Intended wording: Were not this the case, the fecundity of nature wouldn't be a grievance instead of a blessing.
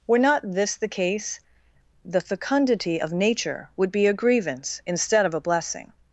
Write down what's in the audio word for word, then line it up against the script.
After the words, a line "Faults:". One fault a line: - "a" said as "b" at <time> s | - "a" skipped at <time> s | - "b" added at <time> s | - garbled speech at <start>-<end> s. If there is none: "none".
Were not this the case, the fecundity of nature would be a grievance instead of a blessing.
Faults:
- "wouldn't" said as "would" at 3.7 s